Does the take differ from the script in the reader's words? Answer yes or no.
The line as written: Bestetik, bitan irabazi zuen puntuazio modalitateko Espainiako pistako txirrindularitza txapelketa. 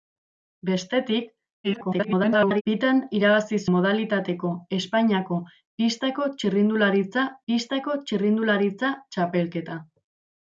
yes